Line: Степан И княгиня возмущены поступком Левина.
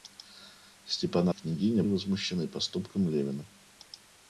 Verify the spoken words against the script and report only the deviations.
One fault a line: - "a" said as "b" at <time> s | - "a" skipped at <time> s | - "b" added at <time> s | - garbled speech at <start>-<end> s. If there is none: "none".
none